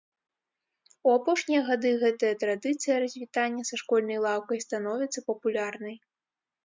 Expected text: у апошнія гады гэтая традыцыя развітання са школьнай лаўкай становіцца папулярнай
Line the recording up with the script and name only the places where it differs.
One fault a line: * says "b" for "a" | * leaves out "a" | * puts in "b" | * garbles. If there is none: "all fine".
all fine